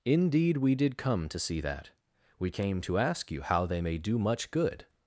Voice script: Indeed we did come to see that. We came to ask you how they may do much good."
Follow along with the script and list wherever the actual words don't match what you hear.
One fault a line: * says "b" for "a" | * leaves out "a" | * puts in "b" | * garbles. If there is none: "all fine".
all fine